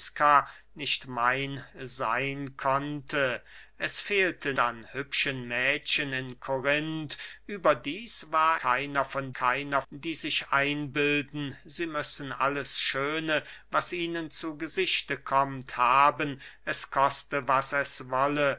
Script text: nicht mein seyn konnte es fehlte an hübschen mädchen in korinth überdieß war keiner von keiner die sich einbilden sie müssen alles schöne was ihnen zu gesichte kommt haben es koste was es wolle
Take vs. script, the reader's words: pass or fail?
pass